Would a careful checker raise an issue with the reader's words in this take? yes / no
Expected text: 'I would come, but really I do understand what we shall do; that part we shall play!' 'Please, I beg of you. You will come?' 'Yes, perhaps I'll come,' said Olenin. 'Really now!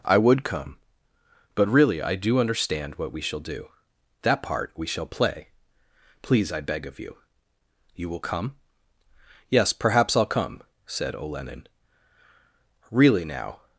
no